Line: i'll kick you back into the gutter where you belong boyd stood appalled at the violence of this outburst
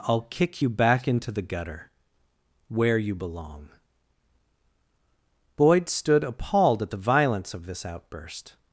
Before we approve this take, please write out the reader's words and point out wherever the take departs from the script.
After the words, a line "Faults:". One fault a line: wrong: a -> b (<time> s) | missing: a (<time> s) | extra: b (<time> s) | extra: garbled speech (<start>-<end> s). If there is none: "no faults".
i'll kick you back into the gutter where you belong boyd stood appalled at the violence of this outburst
Faults:
no faults